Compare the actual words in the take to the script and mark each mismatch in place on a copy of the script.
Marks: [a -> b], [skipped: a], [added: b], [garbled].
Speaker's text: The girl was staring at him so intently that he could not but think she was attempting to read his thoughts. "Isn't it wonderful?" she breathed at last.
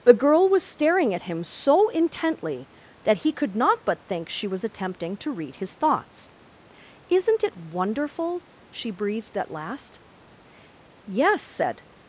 The girl was staring at him so intently that he could not but think she was attempting to read his thoughts. "Isn't it wonderful?" she breathed at last. [added: Yes said]